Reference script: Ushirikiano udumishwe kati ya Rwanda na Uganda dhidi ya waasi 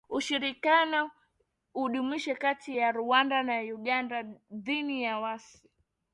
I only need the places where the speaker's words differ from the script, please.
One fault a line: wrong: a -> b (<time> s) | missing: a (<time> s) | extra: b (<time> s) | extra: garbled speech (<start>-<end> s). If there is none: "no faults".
no faults